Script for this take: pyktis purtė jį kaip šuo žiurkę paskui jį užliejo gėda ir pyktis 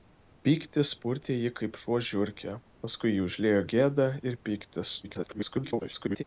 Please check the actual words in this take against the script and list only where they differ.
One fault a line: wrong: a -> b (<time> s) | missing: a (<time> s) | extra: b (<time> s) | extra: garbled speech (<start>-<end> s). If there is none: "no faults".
extra: garbled speech (5.0-6.2 s)